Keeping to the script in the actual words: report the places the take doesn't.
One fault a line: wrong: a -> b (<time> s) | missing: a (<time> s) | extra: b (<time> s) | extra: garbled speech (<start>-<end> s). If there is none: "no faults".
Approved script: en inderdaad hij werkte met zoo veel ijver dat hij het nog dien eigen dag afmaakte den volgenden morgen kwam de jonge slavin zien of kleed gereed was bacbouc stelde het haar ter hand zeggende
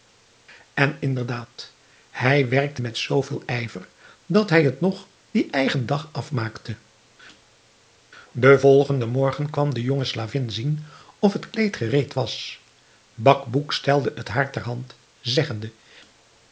extra: het (11.3 s)